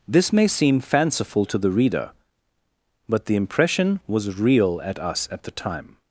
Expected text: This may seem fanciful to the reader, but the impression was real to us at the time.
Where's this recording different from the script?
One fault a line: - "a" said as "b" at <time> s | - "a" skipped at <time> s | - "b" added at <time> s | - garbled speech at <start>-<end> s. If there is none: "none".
- "to" said as "at" at 4.8 s